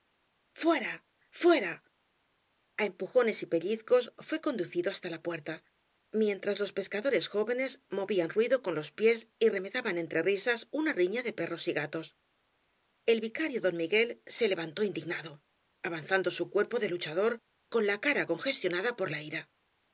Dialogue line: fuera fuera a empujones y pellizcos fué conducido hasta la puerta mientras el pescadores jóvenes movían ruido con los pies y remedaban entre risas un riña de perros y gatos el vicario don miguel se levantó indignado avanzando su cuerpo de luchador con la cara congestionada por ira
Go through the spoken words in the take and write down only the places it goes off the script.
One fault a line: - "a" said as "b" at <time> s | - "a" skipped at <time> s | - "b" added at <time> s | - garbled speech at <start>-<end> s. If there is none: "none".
- "el" said as "los" at 6.6 s
- "un" said as "una" at 10.7 s
- "la" added at 19.1 s